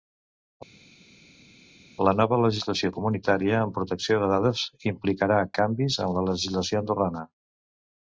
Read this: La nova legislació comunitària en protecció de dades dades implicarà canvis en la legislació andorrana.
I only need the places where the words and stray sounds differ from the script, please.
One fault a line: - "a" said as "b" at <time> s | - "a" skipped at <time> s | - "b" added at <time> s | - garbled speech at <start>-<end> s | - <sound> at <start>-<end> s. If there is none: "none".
- "dades" skipped at 4.6 s